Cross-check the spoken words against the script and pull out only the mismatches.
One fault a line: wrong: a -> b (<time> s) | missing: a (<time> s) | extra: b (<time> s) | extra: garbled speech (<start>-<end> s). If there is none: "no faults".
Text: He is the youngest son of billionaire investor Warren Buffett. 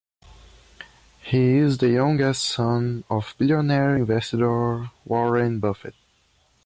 no faults